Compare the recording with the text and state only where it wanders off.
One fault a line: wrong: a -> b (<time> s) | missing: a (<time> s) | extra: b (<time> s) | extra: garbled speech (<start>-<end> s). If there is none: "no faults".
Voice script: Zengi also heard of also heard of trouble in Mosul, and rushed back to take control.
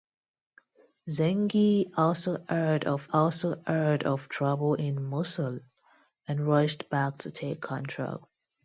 no faults